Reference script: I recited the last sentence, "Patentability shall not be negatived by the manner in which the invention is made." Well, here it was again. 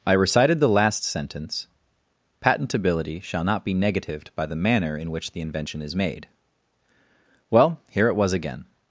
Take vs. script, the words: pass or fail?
pass